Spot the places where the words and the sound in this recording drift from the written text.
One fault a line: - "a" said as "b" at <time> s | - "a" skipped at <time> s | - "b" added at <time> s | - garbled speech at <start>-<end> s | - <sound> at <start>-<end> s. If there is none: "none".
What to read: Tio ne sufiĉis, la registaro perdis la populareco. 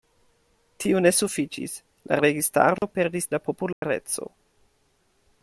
- dropout at 2.8-2.8 s
- dropout at 3.7-3.8 s